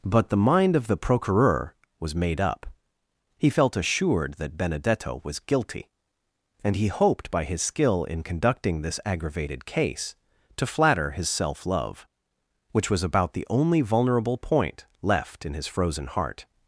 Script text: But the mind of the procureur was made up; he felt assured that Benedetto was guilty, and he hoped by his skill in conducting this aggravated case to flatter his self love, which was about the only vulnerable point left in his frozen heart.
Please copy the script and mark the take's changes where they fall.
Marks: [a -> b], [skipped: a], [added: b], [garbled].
But the mind of the procureur was made up; he felt assured that Benedetto was guilty, and he hoped by his skill in conducting this aggravated case to flatter his self love, which was about the only vulnerable point left in his frozen heart.